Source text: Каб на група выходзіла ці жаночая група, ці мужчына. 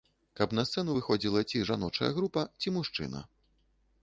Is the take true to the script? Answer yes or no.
no